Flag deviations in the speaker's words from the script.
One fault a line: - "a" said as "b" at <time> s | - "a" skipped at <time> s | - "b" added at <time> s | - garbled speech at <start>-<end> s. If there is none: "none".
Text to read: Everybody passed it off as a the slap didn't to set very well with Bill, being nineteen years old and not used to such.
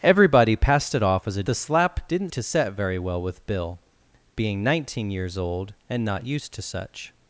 none